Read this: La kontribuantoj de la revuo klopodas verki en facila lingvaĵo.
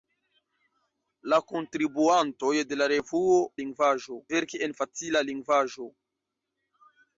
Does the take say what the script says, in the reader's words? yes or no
no